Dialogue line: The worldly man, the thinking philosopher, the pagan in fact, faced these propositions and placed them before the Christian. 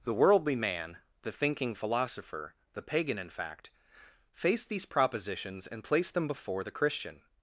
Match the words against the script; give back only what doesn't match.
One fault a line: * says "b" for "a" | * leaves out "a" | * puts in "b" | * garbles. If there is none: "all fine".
all fine